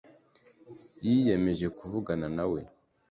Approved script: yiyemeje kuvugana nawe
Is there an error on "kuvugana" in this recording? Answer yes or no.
no